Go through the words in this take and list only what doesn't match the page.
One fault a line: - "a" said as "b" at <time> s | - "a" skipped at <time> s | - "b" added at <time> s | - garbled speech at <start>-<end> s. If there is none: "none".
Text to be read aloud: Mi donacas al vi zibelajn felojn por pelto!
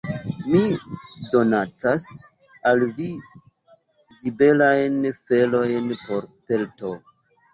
none